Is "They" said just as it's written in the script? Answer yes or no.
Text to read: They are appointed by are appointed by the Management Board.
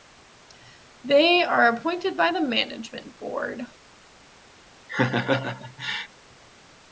yes